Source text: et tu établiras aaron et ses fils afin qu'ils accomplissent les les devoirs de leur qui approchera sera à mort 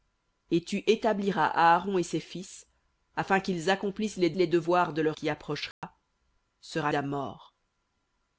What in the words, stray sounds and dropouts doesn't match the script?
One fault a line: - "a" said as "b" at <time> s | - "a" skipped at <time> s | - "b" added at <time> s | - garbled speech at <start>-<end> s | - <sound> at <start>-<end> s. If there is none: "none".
- dropout at 5.7-5.8 s